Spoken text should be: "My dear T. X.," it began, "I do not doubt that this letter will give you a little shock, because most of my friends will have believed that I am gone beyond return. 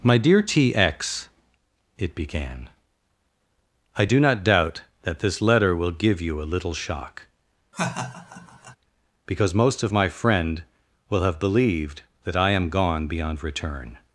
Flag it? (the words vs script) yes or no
yes